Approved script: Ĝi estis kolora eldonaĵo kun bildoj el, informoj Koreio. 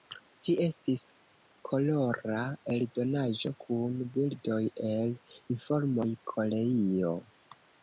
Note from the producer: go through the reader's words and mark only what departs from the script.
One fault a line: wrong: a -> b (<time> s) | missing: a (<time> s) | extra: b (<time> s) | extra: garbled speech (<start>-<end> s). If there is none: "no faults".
no faults